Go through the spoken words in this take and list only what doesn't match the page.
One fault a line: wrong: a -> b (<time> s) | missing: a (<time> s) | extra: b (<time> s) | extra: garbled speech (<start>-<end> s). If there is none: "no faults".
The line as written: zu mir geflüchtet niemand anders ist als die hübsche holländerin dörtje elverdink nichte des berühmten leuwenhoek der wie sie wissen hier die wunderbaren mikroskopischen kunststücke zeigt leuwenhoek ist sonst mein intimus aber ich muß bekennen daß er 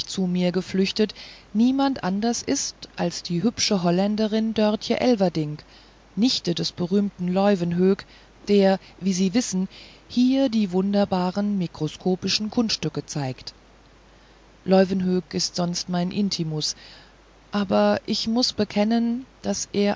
no faults